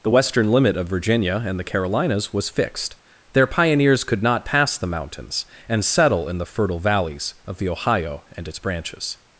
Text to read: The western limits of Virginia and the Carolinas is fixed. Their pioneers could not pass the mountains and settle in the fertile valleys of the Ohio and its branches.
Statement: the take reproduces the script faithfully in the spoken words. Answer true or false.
false